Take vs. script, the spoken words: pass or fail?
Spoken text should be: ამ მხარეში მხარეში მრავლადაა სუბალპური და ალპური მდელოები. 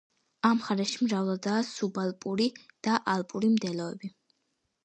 fail